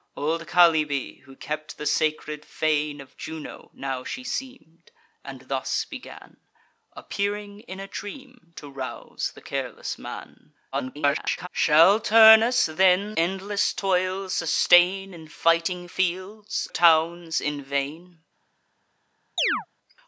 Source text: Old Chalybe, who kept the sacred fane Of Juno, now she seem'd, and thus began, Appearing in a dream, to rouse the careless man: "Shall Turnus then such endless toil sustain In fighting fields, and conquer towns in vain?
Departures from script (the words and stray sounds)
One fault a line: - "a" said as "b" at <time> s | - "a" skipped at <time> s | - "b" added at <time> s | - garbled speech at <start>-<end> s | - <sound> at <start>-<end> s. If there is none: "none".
- garbled speech at 10.7-11.5 s
- "such" skipped at 13.2 s
- "and conquer" skipped at 16.7 s
- chirp at 19.4-19.7 s